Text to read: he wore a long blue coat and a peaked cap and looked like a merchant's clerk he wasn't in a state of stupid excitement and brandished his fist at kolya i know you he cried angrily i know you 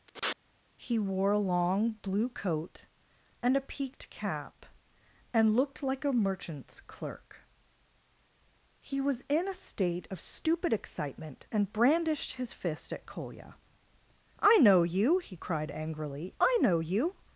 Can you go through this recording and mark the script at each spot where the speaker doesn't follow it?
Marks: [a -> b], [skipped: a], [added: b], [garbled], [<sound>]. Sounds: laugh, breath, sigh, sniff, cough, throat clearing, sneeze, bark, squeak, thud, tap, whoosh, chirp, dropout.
[sniff] he wore a long blue coat and a peaked cap and looked like a merchant's clerk he [wasn't -> was] in a state of stupid excitement and brandished his fist at kolya i know you he cried angrily i know you